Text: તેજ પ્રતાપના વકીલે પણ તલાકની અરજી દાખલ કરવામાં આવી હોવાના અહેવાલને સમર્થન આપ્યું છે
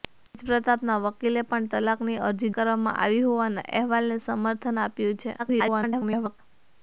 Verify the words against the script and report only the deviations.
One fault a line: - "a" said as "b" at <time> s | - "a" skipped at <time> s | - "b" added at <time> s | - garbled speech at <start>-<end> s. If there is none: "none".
- "દાખલ" skipped at 2.5 s
- garbled speech at 5.4-6.4 s